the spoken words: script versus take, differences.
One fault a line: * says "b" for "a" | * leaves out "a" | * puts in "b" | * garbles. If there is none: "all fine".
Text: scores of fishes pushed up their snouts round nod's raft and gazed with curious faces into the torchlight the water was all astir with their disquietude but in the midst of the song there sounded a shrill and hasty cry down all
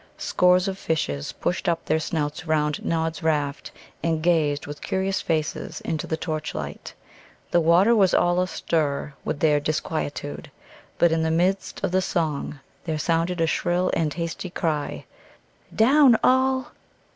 all fine